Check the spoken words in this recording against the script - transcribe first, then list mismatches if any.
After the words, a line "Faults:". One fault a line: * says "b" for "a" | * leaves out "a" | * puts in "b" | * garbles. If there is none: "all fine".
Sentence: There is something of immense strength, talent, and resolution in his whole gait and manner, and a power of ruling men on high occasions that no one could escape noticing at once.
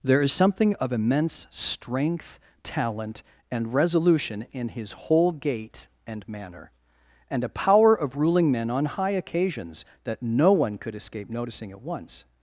There is something of immense strength, talent, and resolution in his whole gait and manner, and a power of ruling men on high occasions that no one could escape noticing at once.
Faults:
all fine